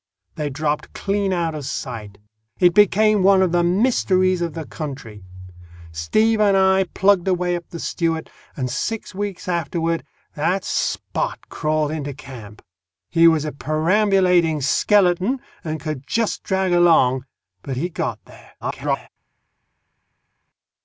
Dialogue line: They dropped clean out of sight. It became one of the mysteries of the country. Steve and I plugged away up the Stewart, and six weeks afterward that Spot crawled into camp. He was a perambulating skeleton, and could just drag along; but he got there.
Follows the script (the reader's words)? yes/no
no